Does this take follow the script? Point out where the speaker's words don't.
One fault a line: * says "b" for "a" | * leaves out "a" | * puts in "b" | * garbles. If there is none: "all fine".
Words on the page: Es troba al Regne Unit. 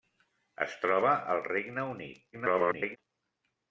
* garbles